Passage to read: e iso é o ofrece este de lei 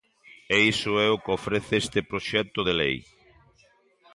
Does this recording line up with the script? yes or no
no